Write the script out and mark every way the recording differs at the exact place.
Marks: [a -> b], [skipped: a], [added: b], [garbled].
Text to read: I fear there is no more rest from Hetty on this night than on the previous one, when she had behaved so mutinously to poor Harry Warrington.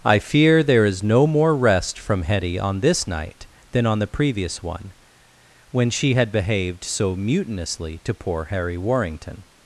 I fear there is no more rest from Hetty on this night than on the previous one, when she had behaved so mutinously to poor Harry Warrington.